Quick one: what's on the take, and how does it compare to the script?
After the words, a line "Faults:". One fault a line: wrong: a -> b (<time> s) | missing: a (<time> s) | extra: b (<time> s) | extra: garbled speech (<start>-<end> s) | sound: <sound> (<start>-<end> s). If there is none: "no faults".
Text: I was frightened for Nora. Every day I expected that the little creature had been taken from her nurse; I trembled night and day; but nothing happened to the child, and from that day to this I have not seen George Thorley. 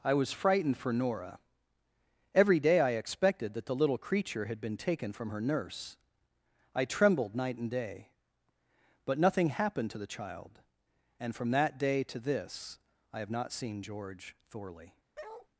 I was frightened for Nora. Every day I expected that the little creature had been taken from her nurse; I trembled night and day; but nothing happened to the child, and from that day to this I have not seen George Thorley.
Faults:
sound: bark (15.2-15.5 s)